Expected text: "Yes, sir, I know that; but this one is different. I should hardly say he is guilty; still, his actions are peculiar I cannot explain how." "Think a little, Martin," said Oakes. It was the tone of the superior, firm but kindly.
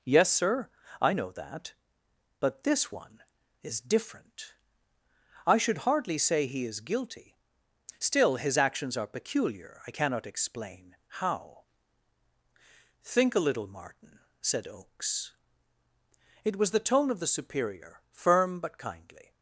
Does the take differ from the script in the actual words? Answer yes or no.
no